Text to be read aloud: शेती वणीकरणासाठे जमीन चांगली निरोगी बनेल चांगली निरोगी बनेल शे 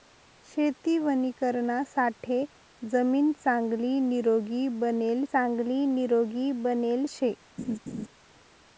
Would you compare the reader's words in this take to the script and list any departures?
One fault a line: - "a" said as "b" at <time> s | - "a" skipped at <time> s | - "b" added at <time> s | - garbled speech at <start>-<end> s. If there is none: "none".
none